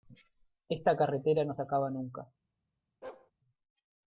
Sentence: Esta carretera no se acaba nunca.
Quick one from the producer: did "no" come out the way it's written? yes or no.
yes